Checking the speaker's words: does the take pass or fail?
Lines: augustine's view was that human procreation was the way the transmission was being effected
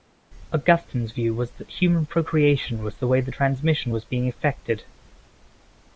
pass